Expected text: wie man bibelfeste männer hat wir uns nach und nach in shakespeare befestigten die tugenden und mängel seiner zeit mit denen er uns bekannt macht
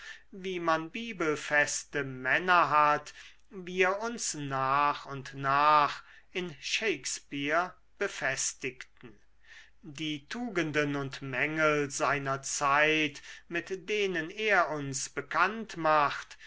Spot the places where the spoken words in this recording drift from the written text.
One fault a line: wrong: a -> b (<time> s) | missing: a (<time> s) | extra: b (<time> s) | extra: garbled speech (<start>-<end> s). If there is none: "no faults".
no faults